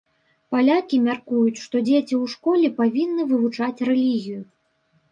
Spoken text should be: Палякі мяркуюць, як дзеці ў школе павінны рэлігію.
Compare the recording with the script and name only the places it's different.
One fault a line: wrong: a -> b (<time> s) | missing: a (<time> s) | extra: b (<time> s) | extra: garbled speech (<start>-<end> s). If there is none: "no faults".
wrong: як -> што (1.6 s)
extra: вывучаць (3.3 s)